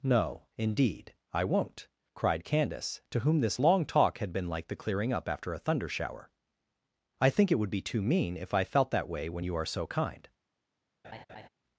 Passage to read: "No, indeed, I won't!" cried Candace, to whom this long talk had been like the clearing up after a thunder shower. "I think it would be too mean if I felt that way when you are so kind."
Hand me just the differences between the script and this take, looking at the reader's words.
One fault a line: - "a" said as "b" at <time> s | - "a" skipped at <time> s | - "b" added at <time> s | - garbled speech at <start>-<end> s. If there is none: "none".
none